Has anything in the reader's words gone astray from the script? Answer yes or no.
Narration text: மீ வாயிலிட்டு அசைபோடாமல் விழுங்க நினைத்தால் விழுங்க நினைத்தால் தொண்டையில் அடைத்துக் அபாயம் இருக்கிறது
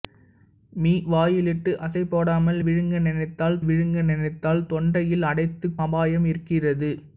no